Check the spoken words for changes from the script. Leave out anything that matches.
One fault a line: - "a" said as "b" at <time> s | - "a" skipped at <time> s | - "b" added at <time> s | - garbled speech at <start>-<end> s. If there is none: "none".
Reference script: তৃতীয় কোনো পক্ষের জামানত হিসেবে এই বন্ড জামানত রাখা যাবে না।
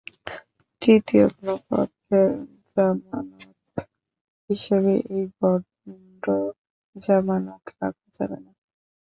none